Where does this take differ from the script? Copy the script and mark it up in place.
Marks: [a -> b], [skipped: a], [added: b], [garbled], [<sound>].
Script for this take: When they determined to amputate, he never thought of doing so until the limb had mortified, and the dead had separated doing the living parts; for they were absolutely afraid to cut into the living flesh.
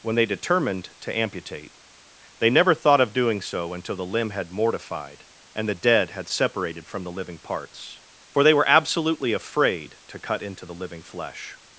When they determined to amputate, [he -> they] never thought of doing so until the limb had mortified, and the dead had separated [doing -> from] the living parts; for they were absolutely afraid to cut into the living flesh.